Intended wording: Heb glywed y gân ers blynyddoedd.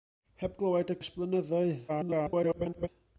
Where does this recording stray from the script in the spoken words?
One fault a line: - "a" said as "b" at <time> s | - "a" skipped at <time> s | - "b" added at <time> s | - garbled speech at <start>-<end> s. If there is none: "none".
- "gân" skipped at 1.0 s
- garbled speech at 1.9-2.9 s